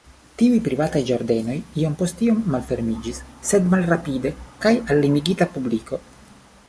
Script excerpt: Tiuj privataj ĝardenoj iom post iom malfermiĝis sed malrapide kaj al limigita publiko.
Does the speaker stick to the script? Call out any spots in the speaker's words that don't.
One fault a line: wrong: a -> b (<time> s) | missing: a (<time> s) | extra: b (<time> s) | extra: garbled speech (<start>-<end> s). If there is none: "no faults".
no faults